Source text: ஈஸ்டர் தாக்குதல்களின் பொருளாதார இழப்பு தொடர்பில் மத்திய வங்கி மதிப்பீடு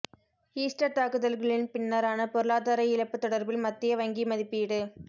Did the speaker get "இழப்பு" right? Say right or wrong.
right